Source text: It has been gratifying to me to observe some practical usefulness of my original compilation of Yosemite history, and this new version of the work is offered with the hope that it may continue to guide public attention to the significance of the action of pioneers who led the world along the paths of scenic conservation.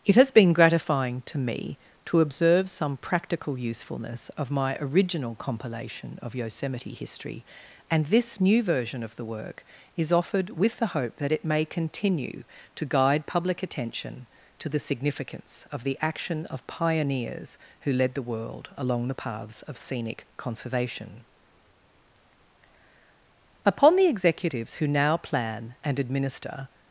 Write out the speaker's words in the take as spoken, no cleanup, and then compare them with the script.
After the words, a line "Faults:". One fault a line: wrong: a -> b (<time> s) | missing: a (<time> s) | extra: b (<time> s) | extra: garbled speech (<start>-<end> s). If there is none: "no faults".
It has been gratifying to me to observe some practical usefulness of my original compilation of Yosemite history, and this new version of the work is offered with the hope that it may continue to guide public attention to the significance of the action of pioneers who led the world along the paths of scenic conservation. Upon the executives who now plan and administer
Faults:
extra: Upon the executives who now plan and administer (23.7 s)